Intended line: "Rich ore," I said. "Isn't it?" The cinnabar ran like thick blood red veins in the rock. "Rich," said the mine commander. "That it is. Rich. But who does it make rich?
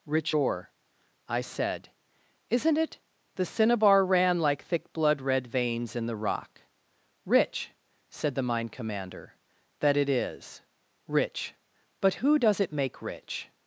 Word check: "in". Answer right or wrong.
right